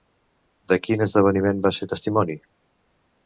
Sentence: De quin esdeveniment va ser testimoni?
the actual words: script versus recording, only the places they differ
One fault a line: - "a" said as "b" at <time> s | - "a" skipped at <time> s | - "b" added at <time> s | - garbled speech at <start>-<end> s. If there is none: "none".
none